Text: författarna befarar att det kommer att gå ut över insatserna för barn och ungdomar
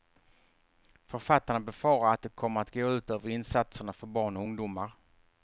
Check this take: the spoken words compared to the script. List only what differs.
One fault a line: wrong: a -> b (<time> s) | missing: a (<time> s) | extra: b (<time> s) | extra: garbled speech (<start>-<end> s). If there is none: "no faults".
no faults